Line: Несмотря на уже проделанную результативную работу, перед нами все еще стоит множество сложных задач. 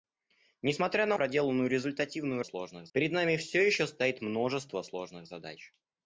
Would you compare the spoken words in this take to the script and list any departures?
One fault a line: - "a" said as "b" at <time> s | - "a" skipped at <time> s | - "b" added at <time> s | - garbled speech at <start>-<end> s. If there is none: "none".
- "уже" skipped at 1.2 s
- "работу" said as "сложных" at 2.4 s